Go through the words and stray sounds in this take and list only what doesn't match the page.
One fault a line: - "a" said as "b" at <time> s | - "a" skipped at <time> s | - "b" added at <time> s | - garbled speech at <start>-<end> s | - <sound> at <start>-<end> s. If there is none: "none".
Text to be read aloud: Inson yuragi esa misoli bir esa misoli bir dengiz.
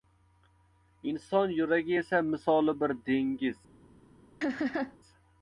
- "esa misoli bir" skipped at 3.0 s
- laugh at 4.4-5.0 s